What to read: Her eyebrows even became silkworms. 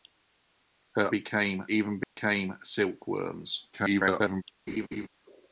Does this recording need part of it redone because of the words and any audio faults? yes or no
yes